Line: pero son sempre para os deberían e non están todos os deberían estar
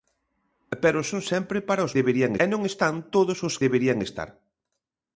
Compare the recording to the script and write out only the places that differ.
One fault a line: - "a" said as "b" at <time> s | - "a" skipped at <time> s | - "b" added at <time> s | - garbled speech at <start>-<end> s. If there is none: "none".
none